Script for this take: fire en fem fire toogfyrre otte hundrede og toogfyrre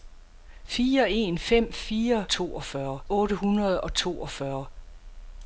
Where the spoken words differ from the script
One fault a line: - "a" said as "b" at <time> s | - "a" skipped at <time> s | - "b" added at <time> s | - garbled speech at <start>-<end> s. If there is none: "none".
none